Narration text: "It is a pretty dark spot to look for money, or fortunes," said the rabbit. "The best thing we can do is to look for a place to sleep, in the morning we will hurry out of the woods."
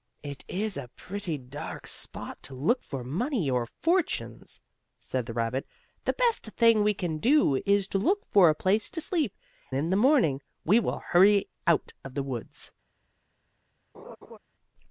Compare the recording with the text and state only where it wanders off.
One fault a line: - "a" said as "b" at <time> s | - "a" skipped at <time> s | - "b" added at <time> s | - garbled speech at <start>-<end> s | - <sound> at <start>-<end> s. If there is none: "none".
- laugh at 13.9-14.4 s